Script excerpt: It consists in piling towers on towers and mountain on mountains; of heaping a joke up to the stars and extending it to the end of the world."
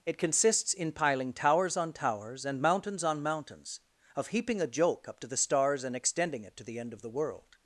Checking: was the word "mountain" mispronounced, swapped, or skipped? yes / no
yes